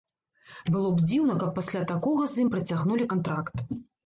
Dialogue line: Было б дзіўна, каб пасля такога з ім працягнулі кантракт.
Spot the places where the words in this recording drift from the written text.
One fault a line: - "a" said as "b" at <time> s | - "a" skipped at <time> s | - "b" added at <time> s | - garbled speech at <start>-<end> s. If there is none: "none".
none